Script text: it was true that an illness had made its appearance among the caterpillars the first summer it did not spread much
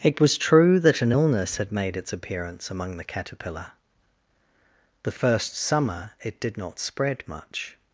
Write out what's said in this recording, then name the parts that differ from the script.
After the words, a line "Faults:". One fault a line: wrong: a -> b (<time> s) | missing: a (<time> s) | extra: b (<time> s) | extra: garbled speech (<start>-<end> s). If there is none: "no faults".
it was true that an illness had made its appearance among the caterpillar the first summer it did not spread much
Faults:
wrong: caterpillars -> caterpillar (3.0 s)